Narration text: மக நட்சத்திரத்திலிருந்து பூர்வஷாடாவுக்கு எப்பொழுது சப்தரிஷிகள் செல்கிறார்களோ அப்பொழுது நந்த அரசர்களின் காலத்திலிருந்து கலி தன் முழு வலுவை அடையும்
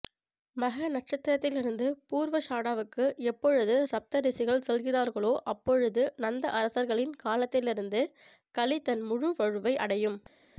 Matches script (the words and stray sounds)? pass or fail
pass